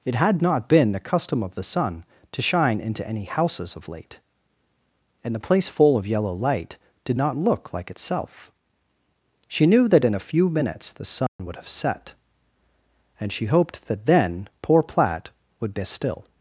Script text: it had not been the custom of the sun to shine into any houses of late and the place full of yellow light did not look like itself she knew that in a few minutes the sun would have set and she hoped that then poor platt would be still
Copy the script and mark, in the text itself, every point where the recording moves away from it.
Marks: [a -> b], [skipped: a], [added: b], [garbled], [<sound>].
it had not been the custom of the sun to shine into any houses of late and the place full of yellow light did not look like itself she knew that in a few minutes the sun [dropout] would have set and she hoped that then poor platt would be still